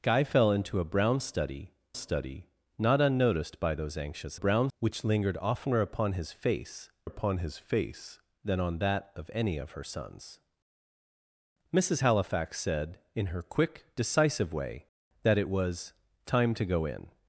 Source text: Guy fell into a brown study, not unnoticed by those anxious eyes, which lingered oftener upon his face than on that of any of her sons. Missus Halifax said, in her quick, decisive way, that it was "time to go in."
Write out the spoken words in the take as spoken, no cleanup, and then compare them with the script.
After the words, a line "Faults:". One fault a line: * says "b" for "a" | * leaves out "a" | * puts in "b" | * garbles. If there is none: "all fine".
Guy fell into a brown study study, not unnoticed by those anxious brown, which lingered oftener upon his face upon his face than on that of any of her sons. Missus Halifax said, in her quick, decisive way, that it was "time to go in."
Faults:
* puts in "study"
* says "brown" for "eyes"
* puts in "upon his face"